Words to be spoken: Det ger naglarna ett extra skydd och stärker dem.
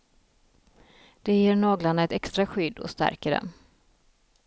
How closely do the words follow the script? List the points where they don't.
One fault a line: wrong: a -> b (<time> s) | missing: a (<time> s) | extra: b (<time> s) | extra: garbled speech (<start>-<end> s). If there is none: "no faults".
no faults